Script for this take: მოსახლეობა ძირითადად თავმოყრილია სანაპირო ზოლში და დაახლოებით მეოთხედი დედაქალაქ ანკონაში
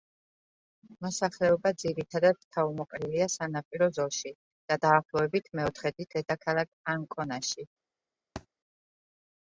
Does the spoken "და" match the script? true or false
true